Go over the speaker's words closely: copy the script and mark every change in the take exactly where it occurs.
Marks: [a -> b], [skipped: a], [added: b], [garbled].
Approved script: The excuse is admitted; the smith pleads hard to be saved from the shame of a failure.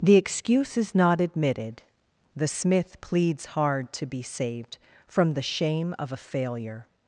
The excuse is [added: not] admitted; the smith pleads hard to be saved from the shame of a failure.